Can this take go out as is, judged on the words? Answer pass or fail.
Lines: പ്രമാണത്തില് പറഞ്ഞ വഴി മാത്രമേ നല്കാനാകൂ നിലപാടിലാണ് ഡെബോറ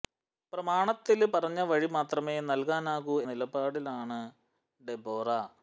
pass